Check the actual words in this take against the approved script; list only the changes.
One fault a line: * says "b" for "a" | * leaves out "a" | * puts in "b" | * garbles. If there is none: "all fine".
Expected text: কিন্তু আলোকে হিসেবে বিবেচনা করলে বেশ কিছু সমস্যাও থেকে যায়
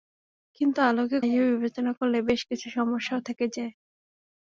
all fine